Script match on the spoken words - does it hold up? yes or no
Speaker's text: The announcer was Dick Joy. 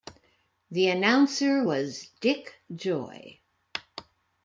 yes